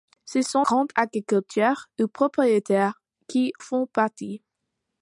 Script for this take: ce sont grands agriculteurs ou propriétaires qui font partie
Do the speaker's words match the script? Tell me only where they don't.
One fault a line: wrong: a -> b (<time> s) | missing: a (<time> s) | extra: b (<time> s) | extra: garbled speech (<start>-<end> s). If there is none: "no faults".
no faults